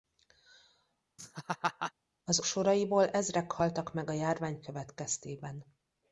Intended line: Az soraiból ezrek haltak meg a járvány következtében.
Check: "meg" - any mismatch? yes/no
no